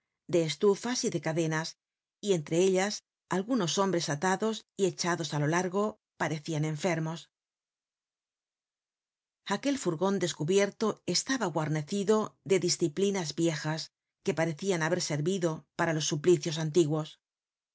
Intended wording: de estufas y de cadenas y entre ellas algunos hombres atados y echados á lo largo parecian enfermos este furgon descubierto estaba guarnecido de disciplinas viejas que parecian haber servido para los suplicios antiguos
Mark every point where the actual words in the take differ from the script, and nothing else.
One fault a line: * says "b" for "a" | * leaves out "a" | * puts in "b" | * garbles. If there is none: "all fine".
* says "aquel" for "este"